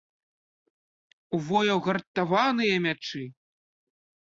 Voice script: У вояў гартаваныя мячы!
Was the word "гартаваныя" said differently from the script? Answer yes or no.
no